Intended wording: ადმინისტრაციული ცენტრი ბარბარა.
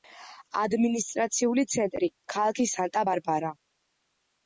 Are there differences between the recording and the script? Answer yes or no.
yes